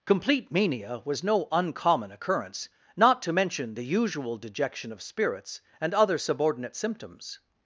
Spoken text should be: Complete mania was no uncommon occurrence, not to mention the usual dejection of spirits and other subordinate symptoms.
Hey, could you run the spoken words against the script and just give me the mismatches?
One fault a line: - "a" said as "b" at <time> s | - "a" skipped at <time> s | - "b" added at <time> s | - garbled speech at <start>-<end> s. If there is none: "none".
none